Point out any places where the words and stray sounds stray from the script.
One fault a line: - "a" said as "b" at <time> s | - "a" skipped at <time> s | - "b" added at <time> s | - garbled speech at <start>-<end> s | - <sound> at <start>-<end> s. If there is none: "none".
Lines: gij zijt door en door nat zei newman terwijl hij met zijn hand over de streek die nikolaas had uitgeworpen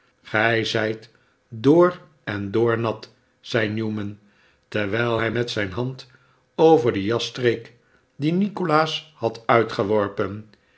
- "jas" added at 7.0 s